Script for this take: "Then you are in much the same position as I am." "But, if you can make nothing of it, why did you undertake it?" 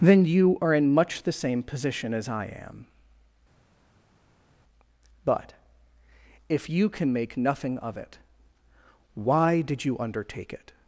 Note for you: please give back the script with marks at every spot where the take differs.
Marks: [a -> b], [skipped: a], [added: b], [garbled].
"Then you are in much the same position as I am." "But, if you can make nothing of it, why did you undertake it?"